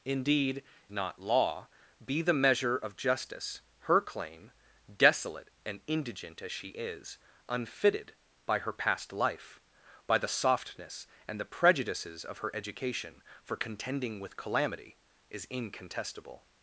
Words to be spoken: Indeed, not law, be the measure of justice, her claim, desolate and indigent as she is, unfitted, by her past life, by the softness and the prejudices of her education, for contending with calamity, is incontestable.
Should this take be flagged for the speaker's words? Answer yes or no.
no